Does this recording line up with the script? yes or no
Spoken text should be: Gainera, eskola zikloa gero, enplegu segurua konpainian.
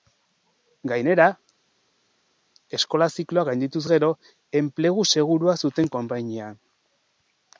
no